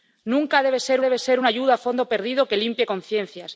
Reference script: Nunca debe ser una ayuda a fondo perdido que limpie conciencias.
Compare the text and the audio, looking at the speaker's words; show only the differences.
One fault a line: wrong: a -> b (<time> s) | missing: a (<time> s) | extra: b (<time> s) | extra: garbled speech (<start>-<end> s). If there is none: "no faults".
extra: debe ser (1.0 s)